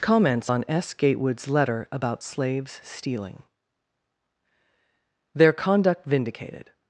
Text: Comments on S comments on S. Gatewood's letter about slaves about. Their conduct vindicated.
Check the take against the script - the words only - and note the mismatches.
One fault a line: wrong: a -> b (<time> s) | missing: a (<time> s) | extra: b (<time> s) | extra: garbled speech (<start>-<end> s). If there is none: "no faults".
missing: comments on S (0.9 s)
wrong: about -> stealing (2.8 s)